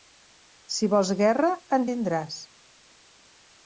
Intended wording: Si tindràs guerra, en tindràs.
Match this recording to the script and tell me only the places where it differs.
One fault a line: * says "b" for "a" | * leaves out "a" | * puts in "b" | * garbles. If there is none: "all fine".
* says "vols" for "tindràs"